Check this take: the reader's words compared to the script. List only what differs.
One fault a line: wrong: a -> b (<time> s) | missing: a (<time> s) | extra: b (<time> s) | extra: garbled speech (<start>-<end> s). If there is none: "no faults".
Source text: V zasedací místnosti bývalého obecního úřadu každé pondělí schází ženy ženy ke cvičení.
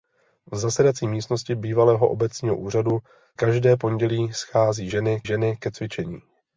no faults